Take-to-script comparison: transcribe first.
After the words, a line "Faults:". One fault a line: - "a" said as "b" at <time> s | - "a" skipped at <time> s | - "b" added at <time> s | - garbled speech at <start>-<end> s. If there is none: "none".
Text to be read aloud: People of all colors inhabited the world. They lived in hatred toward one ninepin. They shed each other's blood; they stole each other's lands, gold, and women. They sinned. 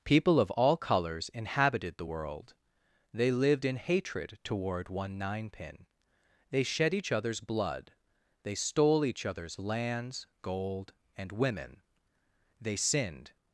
People of all colors inhabited the world. They lived in hatred toward one ninepin. They shed each other's blood; they stole each other's lands, gold, and women. They sinned.
Faults:
none